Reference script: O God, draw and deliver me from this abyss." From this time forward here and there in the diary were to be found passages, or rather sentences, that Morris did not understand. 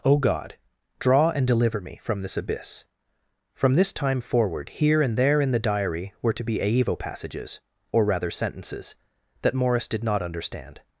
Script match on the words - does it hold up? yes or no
no